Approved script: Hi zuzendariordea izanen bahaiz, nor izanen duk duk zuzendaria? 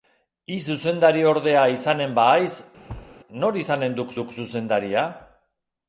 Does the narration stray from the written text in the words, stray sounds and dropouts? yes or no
yes